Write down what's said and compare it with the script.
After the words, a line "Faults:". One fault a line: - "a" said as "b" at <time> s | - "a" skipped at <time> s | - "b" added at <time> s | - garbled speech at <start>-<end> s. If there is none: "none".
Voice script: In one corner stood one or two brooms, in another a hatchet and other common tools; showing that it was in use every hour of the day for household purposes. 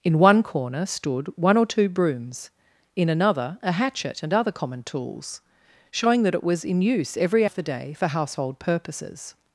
In one corner stood one or two brooms, in another a hatchet and other common tools; showing that it was in use every of the day for household purposes.
Faults:
- "hour" skipped at 7.5 s